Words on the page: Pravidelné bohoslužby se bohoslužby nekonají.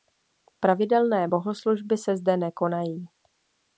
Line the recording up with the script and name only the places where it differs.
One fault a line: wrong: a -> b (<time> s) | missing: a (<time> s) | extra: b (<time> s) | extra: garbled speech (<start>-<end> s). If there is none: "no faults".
wrong: bohoslužby -> zde (2.2 s)